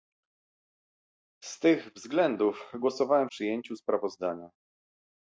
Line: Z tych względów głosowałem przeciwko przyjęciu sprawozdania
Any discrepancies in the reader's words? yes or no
yes